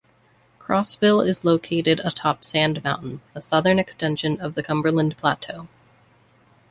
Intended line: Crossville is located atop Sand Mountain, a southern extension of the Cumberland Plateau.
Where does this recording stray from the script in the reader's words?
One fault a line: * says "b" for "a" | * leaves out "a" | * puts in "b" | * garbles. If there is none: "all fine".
all fine